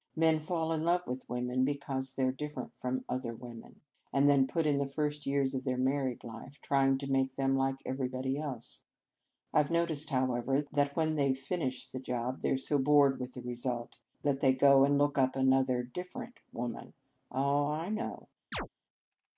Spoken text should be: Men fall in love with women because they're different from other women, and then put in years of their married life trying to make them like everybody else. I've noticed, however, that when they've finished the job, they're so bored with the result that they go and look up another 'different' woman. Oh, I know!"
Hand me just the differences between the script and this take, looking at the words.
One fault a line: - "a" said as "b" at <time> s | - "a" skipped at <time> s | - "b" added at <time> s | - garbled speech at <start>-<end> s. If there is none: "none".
- "the first" added at 4.8 s